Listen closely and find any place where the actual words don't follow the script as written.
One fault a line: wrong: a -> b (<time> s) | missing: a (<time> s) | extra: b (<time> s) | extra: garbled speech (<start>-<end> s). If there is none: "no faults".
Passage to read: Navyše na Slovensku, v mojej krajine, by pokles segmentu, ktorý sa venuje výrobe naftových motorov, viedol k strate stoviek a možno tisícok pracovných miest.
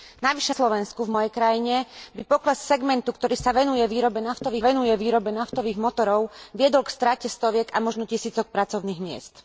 missing: na (0.5 s)
extra: venuje výrobe naftových (4.6 s)